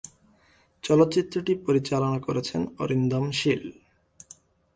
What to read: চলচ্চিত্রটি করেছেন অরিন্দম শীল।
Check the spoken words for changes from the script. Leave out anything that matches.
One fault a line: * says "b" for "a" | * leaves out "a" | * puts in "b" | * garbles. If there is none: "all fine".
* puts in "পরিচালনা"